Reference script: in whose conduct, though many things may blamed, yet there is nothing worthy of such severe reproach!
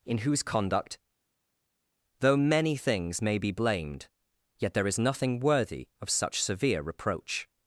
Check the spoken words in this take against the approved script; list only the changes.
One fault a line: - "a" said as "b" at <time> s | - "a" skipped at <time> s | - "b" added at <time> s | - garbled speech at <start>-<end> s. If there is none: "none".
- "be" added at 3.4 s